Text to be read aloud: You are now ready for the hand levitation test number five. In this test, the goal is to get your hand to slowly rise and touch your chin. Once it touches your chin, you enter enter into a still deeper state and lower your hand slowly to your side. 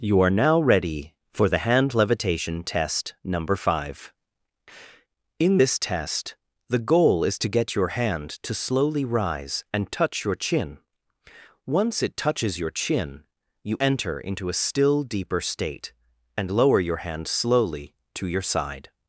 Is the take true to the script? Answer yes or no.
no